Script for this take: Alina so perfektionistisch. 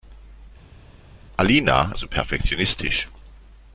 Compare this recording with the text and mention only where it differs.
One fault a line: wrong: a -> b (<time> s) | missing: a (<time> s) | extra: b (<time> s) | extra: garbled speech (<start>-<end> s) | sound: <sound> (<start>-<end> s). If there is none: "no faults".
no faults